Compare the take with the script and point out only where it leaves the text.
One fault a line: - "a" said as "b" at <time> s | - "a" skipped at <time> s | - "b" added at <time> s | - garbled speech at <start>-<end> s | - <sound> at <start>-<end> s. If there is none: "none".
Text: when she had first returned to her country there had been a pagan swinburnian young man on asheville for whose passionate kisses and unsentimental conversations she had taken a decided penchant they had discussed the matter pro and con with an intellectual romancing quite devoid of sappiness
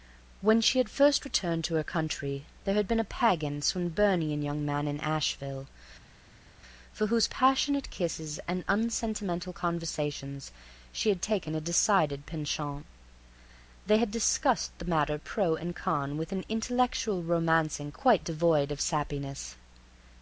- "on" said as "in" at 4.9 s